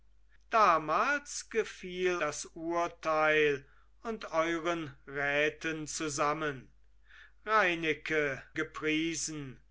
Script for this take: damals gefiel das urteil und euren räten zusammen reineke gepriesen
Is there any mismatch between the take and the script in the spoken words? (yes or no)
no